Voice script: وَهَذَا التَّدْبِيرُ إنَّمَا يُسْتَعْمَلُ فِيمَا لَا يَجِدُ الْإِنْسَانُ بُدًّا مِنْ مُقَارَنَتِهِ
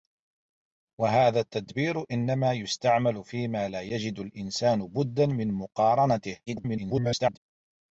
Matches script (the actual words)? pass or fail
fail